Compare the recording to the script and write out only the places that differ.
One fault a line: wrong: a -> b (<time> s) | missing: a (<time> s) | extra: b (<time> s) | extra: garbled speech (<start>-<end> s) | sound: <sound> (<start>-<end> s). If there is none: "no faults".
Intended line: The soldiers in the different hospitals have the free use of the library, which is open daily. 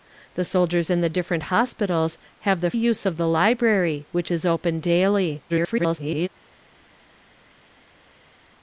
missing: free (2.7 s)
extra: garbled speech (5.5-6.3 s)